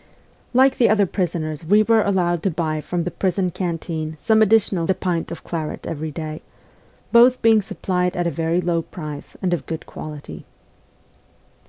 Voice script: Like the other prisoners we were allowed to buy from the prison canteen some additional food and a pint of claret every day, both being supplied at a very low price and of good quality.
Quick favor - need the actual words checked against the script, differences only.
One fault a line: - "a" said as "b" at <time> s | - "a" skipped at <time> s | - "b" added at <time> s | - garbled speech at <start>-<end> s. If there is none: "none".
- "food and" skipped at 4.9 s